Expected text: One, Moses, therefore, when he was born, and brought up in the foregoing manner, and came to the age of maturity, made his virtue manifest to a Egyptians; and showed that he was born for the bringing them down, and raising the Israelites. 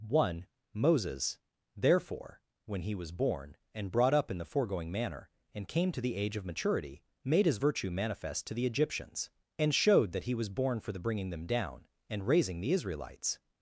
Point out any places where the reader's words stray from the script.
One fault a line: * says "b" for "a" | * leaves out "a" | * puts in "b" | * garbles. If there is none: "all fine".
* says "the" for "a"